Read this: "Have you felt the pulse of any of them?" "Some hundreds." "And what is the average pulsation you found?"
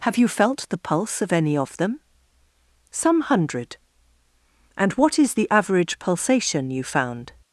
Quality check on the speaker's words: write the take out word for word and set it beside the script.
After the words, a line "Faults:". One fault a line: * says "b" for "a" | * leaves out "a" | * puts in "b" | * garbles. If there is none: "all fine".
"Have you felt the pulse of any of them?" "Some hundred." "And what is the average pulsation you found?"
Faults:
* says "hundred" for "hundreds"